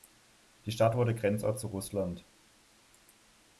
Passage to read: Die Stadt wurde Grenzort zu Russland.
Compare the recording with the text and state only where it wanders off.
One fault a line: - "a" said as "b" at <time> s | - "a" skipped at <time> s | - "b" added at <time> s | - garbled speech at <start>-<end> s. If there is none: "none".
none